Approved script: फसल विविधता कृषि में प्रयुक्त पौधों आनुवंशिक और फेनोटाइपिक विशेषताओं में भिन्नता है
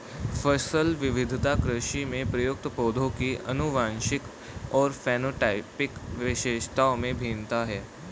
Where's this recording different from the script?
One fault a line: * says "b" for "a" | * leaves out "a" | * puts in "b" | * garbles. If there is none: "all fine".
* puts in "की"